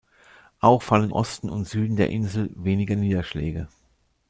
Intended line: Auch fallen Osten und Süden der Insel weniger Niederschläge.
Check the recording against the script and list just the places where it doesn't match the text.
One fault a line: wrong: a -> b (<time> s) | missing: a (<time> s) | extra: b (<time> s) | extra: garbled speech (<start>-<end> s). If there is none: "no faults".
no faults